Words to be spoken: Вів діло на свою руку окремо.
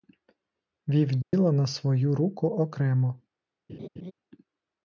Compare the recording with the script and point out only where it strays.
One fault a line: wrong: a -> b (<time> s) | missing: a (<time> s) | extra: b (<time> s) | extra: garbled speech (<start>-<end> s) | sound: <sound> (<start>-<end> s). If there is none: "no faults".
sound: dropout (1.2-1.3 s)
sound: laugh (3.7-4.1 s)